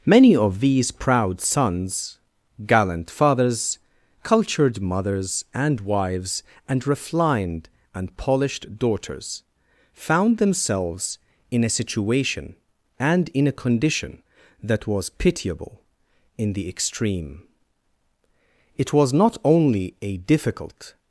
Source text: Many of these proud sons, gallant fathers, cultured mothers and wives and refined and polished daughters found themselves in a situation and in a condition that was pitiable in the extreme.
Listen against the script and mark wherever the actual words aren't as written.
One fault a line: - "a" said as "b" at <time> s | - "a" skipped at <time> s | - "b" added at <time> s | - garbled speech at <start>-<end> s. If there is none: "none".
- "It was not only a difficult" added at 18.8 s